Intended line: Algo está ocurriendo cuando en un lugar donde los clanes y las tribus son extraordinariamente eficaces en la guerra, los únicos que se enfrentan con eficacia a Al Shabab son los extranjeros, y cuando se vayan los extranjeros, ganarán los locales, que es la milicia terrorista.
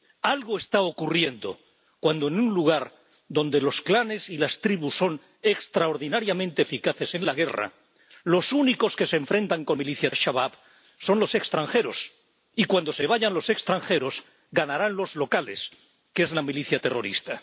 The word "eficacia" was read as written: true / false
false